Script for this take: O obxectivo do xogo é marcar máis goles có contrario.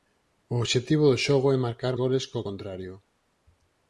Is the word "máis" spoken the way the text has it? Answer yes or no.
no